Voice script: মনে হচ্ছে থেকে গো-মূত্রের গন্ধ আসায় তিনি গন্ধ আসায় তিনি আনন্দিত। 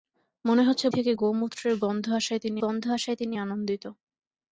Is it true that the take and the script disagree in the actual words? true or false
false